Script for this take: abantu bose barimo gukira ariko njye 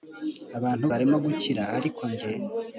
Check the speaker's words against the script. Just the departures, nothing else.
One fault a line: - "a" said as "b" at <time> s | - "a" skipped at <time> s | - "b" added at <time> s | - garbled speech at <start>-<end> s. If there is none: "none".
- "bose" skipped at 0.8 s